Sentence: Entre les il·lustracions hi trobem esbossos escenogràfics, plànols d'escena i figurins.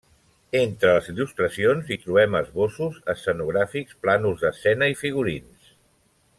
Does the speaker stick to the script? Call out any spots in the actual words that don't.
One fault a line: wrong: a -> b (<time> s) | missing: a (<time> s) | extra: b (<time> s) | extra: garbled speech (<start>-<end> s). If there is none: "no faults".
no faults